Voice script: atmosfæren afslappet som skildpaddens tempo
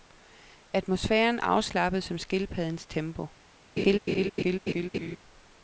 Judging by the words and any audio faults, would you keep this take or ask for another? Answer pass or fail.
fail